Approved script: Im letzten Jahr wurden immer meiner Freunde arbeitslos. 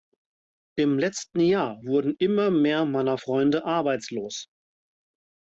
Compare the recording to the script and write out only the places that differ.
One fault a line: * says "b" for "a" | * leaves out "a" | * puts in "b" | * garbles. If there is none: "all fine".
* puts in "mehr"